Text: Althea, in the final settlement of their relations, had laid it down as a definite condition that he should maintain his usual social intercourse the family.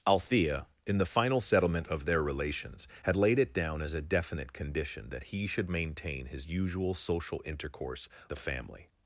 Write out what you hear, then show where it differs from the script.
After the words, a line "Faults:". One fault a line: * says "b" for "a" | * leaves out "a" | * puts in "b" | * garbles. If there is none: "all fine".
Althea, in the final settlement of their relations, had laid it down as a definite condition that he should maintain his usual social intercourse the family.
Faults:
all fine